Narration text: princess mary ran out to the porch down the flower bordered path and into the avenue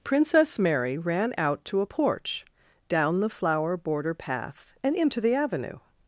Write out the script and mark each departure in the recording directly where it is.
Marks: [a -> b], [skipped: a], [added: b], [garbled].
princess mary ran out to [the -> a] porch down the flower [bordered -> border] path and into the avenue